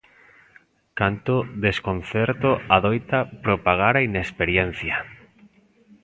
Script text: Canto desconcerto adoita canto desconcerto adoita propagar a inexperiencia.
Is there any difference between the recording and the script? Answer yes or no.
yes